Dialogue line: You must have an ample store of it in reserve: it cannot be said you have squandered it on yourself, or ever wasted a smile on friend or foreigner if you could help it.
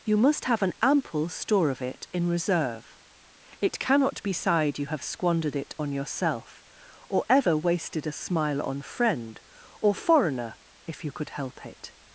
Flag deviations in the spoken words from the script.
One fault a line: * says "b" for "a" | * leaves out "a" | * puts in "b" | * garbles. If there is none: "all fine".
* says "sighed" for "said"